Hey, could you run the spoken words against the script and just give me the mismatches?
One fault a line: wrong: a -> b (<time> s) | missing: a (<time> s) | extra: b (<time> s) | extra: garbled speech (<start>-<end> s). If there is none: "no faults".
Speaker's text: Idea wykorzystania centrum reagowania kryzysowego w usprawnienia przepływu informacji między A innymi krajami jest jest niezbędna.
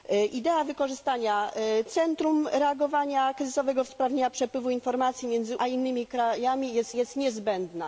no faults